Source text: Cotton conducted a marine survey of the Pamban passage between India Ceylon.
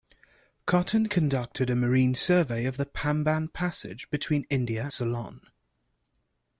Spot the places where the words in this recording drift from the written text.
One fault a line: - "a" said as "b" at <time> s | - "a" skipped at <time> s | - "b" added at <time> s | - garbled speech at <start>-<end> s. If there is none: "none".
none